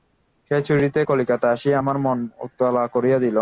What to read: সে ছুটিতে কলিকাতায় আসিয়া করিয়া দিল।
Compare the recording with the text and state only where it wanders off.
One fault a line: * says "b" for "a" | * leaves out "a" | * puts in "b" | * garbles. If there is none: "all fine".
* puts in "আমার মন উতলা"